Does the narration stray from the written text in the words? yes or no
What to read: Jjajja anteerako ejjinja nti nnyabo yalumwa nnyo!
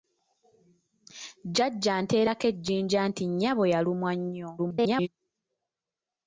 yes